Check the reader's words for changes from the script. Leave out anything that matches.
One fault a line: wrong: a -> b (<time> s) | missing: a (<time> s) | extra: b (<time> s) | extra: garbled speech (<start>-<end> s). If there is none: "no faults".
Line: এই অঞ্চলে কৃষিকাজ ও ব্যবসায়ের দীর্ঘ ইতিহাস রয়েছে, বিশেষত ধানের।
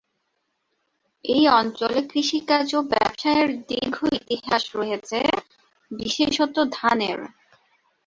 no faults